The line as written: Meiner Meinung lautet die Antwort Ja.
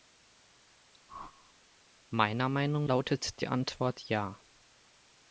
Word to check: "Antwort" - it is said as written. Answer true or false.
true